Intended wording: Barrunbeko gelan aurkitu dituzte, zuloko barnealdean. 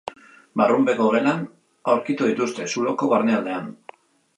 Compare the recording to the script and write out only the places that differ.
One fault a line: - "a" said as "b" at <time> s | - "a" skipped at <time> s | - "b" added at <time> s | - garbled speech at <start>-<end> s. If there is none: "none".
none